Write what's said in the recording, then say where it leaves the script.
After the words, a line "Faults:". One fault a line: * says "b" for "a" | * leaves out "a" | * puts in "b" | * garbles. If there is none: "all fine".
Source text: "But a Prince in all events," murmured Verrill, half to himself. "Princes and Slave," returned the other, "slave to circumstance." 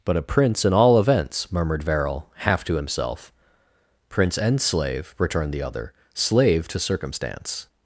"But a Prince in all events," murmured Verrill, half to himself. "Prince and Slave," returned the other, "slave to circumstance."
Faults:
* says "Prince" for "Princes"